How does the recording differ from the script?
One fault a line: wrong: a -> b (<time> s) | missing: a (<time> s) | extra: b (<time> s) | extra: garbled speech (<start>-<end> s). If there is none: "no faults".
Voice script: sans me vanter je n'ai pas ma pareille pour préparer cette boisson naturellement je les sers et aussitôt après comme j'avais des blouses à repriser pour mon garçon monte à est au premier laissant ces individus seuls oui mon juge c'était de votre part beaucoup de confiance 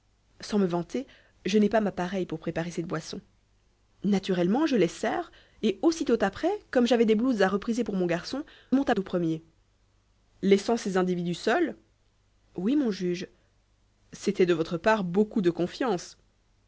no faults